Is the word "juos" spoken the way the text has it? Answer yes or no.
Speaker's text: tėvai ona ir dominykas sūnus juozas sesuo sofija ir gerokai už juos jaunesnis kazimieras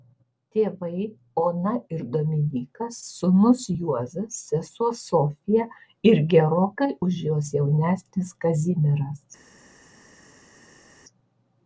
yes